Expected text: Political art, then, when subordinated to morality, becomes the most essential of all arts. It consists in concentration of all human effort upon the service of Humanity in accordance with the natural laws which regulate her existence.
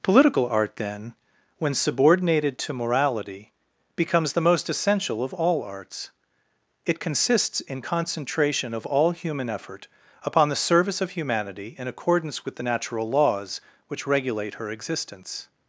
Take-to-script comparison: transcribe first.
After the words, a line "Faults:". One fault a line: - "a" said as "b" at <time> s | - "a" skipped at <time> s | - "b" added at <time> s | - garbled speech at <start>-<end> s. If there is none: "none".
Political art, then, when subordinated to morality, becomes the most essential of all arts. It consists in concentration of all human effort upon the service of Humanity in accordance with the natural laws which regulate her existence.
Faults:
none